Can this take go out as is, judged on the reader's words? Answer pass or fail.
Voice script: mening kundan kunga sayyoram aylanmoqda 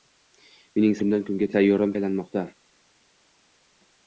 pass